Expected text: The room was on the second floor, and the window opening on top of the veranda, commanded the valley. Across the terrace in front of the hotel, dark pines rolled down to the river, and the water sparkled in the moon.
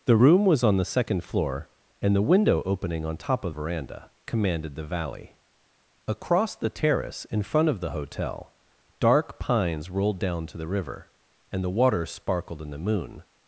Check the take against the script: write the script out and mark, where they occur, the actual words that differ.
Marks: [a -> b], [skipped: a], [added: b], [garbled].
The room was on the second floor, and the window opening on top of [skipped: the] veranda, commanded the valley. Across the terrace in front of the hotel, dark pines rolled down to the river, and the water sparkled in the moon.